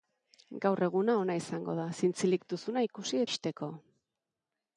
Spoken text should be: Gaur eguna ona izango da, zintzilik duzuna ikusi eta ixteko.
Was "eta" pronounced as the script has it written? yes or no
no